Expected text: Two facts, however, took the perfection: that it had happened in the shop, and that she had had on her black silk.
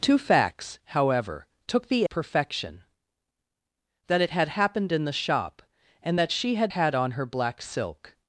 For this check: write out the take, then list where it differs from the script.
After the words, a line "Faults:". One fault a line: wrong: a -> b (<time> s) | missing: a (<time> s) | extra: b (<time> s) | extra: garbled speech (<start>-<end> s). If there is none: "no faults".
Two facts, however, took the perfection: that it had happened in the shop, and that she had had on her black silk.
Faults:
no faults